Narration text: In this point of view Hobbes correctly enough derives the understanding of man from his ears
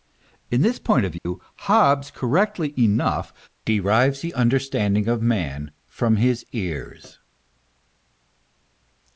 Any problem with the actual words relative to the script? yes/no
no